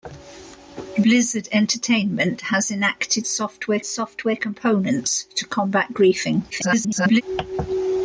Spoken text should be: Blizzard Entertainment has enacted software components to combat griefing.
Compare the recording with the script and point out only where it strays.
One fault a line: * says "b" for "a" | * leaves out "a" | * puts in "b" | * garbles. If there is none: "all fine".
* puts in "software"
* garbles